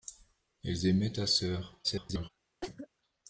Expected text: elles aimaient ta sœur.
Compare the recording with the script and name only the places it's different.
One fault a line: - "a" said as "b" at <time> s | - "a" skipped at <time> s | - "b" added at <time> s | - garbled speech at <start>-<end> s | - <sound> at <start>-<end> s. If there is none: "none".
- garbled speech at 1.8-2.3 s
- cough at 2.6-2.9 s